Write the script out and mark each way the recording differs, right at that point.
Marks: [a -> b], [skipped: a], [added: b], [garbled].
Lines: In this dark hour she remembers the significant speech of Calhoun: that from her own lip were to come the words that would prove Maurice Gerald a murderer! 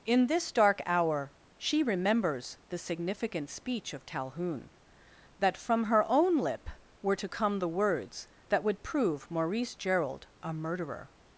In this dark hour she remembers the significant speech of Calhoun: that from her own lip were to come the words that would prove Maurice Gerald a murderer!